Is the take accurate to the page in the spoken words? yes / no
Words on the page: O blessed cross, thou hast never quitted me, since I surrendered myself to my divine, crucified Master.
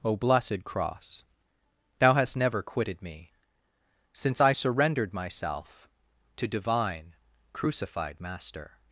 no